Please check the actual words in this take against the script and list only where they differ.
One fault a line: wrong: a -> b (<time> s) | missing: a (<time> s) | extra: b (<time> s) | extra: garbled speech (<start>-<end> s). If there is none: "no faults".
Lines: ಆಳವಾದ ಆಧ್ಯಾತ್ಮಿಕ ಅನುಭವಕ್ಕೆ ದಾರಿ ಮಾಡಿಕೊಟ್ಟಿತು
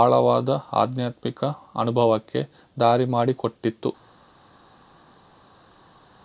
no faults